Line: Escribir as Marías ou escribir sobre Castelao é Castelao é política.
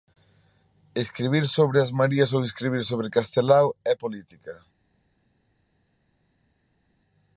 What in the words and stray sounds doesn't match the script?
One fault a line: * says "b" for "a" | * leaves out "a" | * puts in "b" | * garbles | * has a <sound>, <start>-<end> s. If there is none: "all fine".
* puts in "sobre"
* leaves out "Castelao é"